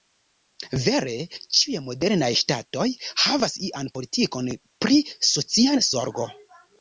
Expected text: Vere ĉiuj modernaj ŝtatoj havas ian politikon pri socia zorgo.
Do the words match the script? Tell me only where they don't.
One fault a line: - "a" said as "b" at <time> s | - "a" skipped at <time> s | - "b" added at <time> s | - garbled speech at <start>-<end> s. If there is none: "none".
none